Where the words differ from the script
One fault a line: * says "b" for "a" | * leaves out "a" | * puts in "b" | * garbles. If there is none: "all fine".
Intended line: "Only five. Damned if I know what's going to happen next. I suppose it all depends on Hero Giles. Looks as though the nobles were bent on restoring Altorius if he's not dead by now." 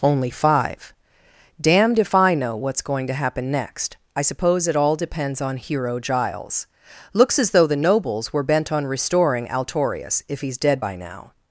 * leaves out "not"